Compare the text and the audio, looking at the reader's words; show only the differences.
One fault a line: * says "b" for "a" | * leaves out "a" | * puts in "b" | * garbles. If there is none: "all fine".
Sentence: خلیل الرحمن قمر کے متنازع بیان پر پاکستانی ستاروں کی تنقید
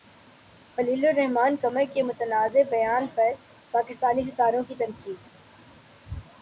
all fine